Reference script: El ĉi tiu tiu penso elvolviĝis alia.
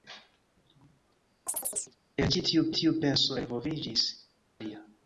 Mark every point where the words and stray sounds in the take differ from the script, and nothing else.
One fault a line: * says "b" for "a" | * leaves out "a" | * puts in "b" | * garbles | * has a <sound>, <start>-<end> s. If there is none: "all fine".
* has a chirp, 1.5-2.0 s